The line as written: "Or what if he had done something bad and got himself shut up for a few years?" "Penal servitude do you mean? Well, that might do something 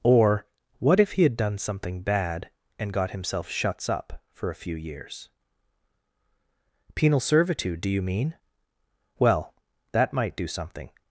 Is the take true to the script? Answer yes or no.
no